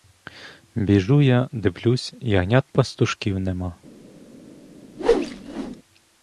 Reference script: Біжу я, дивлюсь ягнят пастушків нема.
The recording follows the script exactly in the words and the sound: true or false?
false